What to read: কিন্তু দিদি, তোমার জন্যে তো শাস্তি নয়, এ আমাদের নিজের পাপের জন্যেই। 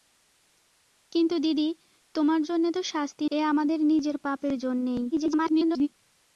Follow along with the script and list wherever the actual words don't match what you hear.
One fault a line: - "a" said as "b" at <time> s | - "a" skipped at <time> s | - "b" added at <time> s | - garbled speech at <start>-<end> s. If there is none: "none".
- "নয়" skipped at 3.3 s
- garbled speech at 5.1-5.9 s